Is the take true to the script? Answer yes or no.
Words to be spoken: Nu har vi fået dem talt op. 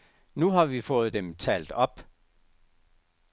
yes